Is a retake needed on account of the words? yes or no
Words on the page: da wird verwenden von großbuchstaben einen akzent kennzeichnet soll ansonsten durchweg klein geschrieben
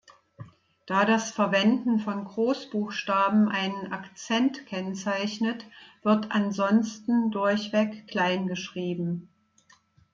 yes